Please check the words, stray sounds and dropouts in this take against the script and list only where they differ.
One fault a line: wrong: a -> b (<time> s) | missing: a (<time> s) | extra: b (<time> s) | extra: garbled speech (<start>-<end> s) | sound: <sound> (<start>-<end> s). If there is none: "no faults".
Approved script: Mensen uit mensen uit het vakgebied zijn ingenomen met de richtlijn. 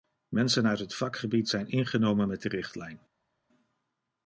missing: mensen uit (0.8 s)